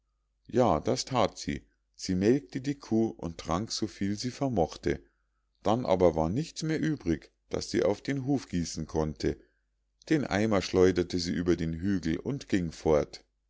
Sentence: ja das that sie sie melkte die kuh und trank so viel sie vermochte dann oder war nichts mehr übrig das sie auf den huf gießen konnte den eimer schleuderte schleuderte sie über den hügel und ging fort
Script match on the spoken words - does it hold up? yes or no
no